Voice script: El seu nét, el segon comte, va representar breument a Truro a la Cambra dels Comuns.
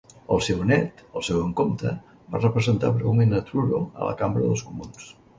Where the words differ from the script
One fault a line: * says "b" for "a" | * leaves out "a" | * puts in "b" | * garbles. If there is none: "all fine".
all fine